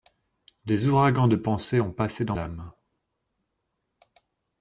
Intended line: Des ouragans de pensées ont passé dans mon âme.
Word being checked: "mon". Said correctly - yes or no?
no